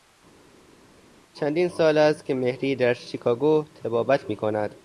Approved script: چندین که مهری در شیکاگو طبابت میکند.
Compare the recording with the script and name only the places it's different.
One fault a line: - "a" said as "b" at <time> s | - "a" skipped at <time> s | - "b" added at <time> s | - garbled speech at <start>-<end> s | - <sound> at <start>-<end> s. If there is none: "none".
- "سال است" added at 1.7 s